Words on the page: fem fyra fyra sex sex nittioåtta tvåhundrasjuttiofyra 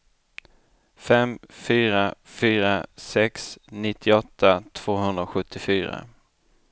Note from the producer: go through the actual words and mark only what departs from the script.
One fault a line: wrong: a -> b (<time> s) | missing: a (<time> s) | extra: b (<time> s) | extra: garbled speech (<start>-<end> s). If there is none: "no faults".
missing: sex (3.6 s)